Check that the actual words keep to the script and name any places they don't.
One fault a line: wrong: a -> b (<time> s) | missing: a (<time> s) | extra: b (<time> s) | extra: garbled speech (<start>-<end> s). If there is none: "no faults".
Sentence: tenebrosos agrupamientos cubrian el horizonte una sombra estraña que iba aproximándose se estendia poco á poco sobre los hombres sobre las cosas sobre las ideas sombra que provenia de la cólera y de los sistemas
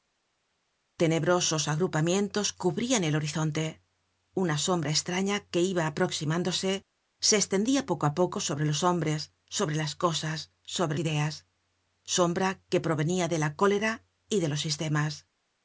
missing: las (11.0 s)